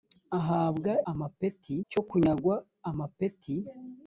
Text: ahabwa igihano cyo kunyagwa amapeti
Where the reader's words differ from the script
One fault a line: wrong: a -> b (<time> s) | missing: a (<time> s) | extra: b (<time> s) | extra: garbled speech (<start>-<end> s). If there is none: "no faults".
wrong: igihano -> amapeti (1.1 s)